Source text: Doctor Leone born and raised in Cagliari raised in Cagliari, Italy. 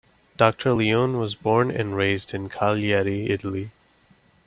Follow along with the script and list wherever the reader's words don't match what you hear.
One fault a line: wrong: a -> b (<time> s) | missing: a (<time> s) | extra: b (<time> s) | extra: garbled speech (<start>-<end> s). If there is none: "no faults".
extra: was (1.2 s)
missing: raised in Cagliari (3.3 s)